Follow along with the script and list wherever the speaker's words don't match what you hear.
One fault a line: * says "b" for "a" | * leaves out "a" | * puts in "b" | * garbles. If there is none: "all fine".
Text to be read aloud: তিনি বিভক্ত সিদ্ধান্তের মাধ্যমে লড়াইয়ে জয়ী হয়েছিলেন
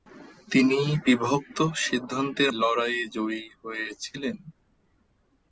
* leaves out "মাধ্যমে"